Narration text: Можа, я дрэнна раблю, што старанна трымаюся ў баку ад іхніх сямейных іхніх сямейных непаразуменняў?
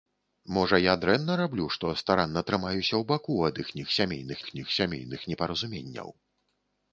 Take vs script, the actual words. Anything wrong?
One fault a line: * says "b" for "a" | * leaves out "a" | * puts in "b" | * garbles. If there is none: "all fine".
all fine